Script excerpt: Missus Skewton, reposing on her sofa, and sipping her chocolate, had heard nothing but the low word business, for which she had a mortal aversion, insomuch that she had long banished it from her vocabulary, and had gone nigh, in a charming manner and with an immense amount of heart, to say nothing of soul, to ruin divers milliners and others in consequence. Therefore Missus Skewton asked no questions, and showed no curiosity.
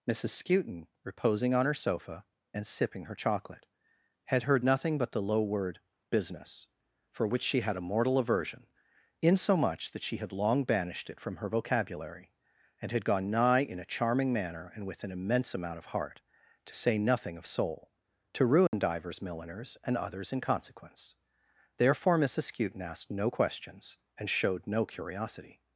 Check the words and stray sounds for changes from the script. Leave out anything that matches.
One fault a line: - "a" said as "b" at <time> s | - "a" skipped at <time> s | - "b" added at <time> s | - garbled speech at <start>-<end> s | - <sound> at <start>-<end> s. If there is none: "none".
- dropout at 18.7-18.7 s